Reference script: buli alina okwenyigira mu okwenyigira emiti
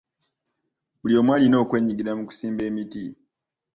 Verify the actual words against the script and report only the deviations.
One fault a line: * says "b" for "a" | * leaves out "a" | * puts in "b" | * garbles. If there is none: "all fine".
* puts in "omu"
* says "kusimba" for "okwenyigira"